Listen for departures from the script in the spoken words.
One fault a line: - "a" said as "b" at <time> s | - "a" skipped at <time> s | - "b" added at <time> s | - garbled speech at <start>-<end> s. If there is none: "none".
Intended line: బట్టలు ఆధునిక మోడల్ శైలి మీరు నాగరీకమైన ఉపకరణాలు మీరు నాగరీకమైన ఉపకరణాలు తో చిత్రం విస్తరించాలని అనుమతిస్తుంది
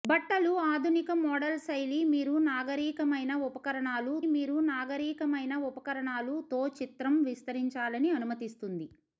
none